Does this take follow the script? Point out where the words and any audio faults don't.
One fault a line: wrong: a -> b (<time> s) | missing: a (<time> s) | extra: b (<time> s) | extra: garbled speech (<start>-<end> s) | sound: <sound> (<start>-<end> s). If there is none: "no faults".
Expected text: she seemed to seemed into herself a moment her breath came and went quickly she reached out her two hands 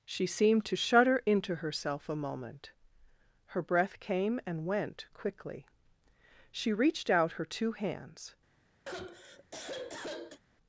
wrong: seemed -> shudder (0.8 s)
sound: sigh (8.9-10.4 s)